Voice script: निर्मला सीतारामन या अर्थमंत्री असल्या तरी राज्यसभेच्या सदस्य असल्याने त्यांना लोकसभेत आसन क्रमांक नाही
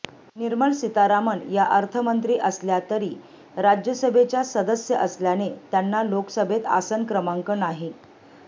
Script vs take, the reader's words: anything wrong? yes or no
no